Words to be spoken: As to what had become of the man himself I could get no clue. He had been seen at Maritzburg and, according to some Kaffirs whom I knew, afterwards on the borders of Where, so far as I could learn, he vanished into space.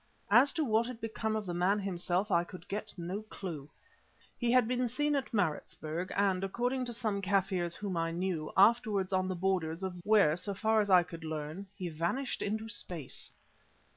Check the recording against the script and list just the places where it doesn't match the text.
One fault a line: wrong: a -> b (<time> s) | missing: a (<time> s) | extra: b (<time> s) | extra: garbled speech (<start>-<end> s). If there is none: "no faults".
no faults